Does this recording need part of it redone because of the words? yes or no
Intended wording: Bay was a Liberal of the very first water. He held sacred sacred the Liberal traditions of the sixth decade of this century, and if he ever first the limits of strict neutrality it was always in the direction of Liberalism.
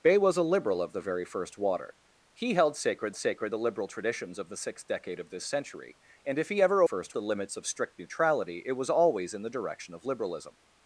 no